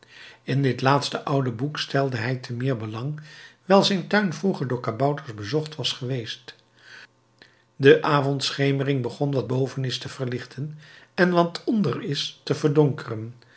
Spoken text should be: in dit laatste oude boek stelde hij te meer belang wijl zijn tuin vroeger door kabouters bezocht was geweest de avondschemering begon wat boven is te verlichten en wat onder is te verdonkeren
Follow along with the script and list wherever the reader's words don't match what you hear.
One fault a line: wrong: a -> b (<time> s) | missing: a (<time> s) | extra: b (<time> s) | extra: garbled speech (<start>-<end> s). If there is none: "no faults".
no faults